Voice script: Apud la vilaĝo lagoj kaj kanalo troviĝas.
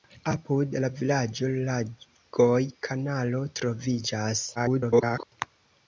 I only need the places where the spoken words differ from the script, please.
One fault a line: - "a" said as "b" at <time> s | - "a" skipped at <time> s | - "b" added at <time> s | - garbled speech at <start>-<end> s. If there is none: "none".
- "kaj" skipped at 2.6 s
- garbled speech at 4.6-5.3 s